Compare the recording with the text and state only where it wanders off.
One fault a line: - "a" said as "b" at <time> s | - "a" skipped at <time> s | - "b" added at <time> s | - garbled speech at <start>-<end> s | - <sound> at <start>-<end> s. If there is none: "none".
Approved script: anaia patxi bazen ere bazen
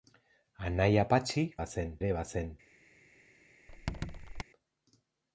- squeak at 3.7-4.4 s